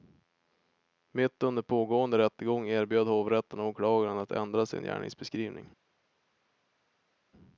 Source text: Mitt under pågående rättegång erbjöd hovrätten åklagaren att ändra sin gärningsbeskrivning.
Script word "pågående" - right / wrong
right